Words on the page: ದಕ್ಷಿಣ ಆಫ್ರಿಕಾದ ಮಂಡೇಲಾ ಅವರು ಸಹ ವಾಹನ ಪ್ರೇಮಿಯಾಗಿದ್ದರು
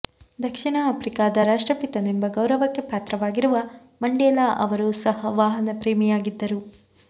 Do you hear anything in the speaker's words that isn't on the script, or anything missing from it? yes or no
yes